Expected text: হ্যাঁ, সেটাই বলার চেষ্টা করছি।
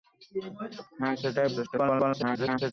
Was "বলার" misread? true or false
true